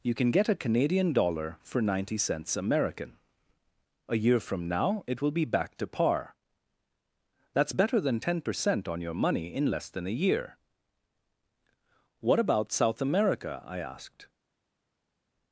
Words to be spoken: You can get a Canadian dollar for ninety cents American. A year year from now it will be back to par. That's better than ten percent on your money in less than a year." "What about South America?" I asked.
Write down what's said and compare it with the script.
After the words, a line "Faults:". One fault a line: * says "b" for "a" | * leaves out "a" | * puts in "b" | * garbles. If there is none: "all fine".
You can get a Canadian dollar for ninety cents American. A year from now it will be back to par. That's better than ten percent on your money in less than a year." "What about South America?" I asked.
Faults:
* leaves out "year"